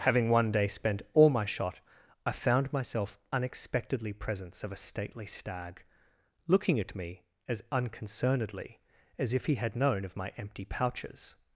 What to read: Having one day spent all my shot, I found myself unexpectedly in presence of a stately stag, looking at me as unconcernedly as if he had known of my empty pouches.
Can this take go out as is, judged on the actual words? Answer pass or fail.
fail